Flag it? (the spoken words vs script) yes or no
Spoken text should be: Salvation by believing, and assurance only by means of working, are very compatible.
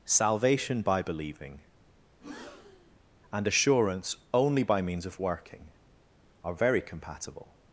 no